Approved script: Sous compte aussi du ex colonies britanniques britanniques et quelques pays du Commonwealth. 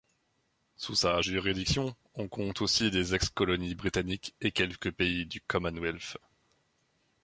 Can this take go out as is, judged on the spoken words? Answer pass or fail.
fail